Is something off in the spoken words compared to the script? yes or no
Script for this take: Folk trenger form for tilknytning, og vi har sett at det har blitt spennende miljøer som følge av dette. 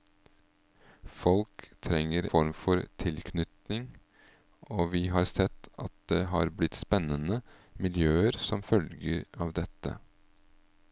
no